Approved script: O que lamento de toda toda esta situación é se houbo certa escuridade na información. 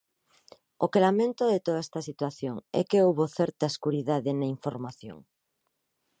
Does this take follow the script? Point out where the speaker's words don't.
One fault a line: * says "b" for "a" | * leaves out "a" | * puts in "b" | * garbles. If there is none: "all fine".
* leaves out "toda"
* says "que" for "se"